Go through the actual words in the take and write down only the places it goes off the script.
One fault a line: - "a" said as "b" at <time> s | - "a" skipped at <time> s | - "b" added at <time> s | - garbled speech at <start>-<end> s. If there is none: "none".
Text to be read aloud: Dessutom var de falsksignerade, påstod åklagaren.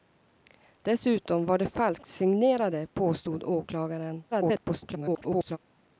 - garbled speech at 4.3-5.6 s